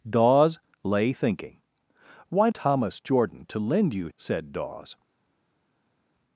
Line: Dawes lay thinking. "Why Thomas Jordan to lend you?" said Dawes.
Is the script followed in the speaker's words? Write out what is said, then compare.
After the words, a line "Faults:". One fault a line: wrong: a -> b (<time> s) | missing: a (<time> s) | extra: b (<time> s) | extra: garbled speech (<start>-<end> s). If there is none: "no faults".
Dawes lay thinking. "Why Thomas Jordan to lend you?" said Dawes.
Faults:
no faults